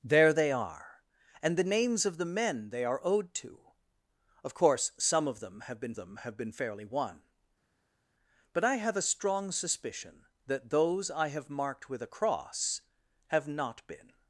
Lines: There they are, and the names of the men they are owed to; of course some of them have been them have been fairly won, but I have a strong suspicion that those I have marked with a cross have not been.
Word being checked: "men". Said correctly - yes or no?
yes